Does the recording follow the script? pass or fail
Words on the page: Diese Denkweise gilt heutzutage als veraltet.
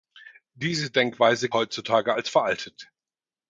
fail